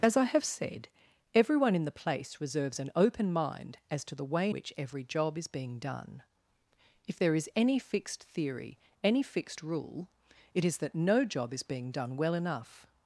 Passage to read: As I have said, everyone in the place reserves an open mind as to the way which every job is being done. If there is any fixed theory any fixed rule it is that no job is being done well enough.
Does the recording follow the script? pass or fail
pass